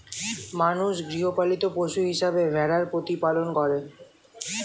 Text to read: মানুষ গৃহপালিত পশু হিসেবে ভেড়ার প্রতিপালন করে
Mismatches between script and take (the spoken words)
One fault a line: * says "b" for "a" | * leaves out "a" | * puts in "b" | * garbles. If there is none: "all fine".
all fine